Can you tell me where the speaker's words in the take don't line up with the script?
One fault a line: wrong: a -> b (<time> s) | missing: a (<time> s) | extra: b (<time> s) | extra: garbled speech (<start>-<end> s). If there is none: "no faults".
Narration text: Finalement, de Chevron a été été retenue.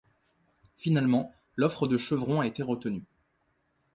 extra: l'offre (1.6 s)
missing: été (2.6 s)